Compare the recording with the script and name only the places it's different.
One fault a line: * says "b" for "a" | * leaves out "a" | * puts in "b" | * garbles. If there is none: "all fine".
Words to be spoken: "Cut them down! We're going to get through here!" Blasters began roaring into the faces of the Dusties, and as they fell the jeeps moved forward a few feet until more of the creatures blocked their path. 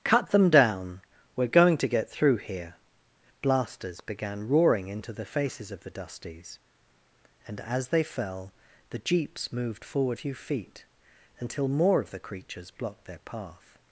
* leaves out "a"